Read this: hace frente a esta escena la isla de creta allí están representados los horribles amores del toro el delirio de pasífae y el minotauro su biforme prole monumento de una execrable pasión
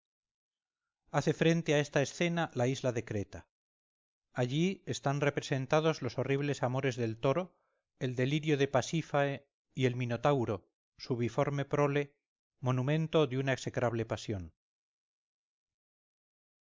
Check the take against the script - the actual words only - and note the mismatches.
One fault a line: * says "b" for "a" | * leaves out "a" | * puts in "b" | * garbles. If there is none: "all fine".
all fine